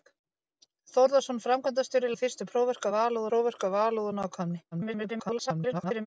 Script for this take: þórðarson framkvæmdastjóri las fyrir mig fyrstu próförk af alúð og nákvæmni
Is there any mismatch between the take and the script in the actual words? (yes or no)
yes